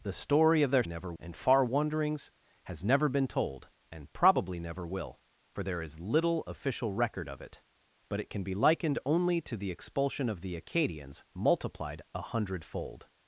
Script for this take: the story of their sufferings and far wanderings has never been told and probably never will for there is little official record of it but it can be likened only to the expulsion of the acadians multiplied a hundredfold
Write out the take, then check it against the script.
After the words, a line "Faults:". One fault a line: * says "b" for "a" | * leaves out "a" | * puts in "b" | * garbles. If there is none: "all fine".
the story of their never and far wanderings has never been told and probably never will for there is little official record of it but it can be likened only to the expulsion of the acadians multiplied a hundredfold
Faults:
* says "never" for "sufferings"